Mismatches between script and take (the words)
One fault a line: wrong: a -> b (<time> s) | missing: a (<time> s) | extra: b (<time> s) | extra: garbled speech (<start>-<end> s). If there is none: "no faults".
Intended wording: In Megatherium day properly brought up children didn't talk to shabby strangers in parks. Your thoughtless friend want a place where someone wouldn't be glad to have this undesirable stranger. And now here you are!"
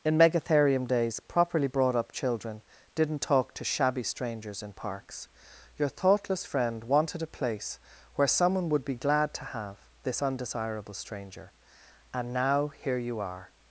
wrong: day -> days (0.9 s)
wrong: want -> wanted (6.8 s)
wrong: wouldn't -> would (8.7 s)